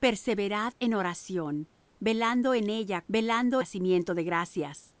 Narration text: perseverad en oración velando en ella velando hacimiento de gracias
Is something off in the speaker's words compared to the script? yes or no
no